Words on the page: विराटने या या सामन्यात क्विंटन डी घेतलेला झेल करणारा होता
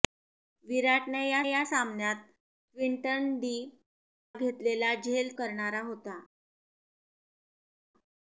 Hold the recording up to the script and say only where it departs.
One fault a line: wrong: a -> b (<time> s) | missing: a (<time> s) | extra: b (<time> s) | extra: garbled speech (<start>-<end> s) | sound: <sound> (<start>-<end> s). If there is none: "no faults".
no faults